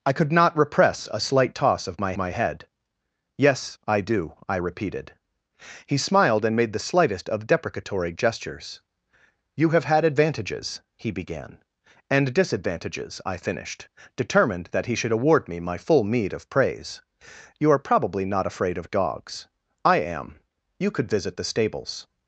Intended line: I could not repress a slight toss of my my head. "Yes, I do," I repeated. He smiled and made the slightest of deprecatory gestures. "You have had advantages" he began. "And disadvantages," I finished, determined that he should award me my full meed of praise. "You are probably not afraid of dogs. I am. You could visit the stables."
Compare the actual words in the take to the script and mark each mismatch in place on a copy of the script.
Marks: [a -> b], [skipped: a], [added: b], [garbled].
I could not repress a slight toss of my my head. "Yes, I do," I repeated. He smiled and made the slightest of deprecatory gestures. "You have had advantages" he began. "And disadvantages," I finished, determined that he should award me my full meed of praise. "You are probably not afraid of dogs. I am. You could visit the stables."